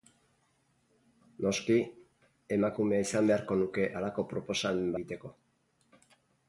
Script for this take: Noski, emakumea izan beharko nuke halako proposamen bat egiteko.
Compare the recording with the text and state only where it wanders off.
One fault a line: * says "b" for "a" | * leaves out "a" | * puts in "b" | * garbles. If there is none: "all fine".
* leaves out "bat"